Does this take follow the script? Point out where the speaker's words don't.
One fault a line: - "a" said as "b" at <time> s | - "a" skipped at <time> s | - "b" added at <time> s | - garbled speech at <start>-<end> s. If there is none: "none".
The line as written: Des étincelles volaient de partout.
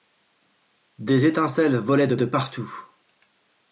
- "de" added at 2.2 s